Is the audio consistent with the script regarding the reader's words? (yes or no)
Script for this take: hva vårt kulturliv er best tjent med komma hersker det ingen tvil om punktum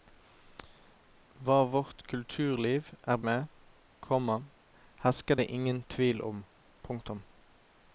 no